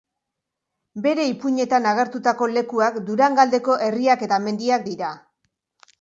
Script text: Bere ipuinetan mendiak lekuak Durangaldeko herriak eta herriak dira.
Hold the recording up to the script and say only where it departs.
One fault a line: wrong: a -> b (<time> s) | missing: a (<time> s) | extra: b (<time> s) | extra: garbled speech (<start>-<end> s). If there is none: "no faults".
wrong: mendiak -> agertutako (1.9 s)
wrong: herriak -> mendiak (4.4 s)